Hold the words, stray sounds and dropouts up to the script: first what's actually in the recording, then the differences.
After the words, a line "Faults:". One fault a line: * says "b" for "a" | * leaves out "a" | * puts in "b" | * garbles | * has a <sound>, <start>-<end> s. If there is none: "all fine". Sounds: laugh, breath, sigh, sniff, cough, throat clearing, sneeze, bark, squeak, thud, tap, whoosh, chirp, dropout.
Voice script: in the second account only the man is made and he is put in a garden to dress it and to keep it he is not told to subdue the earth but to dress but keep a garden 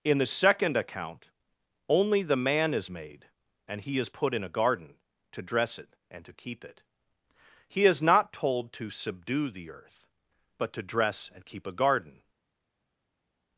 in the second account only the man is made and he is put in a garden to dress it and to keep it he is not told to subdue the earth but to dress and keep a garden
Faults:
* says "and" for "but"